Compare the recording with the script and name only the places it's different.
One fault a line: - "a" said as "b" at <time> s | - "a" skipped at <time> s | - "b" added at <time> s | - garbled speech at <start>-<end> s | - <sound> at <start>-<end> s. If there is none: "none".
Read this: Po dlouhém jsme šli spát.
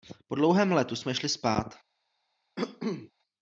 - "letu" added at 0.7 s
- cough at 2.6-3.1 s